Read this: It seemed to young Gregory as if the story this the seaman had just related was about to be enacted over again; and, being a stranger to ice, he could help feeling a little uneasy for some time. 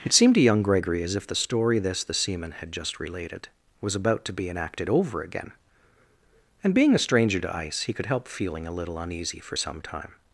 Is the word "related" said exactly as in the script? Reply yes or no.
yes